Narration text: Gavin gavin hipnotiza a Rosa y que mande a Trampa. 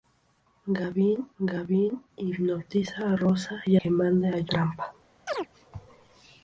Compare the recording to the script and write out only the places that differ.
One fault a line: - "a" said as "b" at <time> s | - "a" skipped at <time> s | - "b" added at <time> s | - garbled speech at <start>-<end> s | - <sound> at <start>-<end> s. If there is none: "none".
- chirp at 5.3-5.5 s